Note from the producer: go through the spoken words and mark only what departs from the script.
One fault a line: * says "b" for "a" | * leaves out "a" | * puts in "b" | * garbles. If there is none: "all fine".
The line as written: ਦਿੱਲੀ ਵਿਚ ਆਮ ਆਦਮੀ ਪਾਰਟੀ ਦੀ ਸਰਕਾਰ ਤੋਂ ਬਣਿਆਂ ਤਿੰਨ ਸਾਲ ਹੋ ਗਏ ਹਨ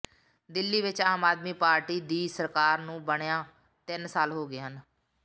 * says "ਨੂੰ" for "ਤੋਂ"